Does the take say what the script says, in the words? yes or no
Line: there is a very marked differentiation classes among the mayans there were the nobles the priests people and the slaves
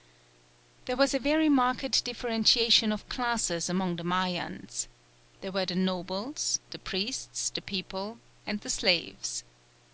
no